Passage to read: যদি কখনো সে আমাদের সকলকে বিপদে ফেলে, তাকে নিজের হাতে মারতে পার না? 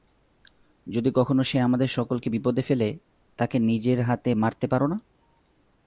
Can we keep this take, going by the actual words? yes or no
yes